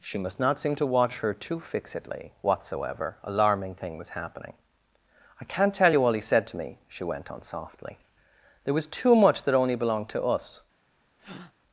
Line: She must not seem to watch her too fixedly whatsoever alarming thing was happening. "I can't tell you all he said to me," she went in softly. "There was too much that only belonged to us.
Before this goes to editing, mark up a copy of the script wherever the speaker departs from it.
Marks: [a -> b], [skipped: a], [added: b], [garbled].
She must not seem to watch her too fixedly whatsoever alarming thing was happening. "I can't tell you all he said to me," she went [in -> on] softly. "There was too much that only belonged to us.